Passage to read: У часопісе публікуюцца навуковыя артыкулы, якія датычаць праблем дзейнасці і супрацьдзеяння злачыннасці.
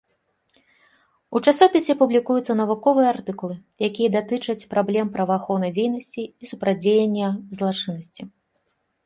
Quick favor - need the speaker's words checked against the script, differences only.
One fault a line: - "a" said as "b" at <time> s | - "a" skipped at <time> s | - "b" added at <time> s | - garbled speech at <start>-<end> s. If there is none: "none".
- "праваахоўнай" added at 5.2 s